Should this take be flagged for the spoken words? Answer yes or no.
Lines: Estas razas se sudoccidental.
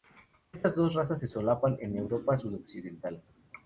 yes